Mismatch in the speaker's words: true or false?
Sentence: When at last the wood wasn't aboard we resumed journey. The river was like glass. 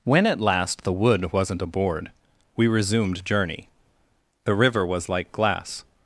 false